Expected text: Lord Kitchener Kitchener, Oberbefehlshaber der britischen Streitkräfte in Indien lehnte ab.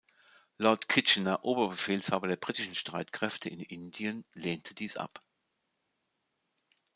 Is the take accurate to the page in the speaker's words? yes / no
no